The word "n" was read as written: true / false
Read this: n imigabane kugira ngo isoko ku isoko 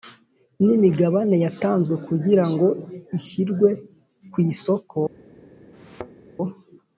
true